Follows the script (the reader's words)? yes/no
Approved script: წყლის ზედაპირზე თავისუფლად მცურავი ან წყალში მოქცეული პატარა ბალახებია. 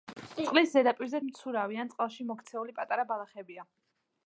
no